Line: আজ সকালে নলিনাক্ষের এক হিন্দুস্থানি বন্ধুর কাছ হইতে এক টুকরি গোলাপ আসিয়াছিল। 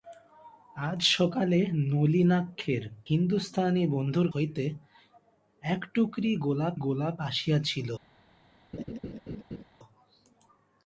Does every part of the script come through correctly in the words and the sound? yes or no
no